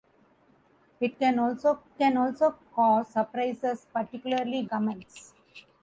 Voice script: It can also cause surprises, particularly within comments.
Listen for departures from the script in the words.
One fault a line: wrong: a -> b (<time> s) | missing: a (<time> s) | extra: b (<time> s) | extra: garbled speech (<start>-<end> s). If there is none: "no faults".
extra: can also (2.0 s)
missing: within (4.7 s)